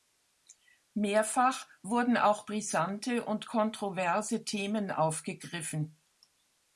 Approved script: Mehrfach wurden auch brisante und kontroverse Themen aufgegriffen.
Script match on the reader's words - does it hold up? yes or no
yes